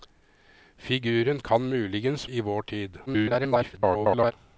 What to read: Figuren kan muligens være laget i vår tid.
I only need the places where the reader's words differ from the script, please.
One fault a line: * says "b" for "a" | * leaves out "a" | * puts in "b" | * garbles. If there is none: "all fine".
* leaves out "være laget"
* garbles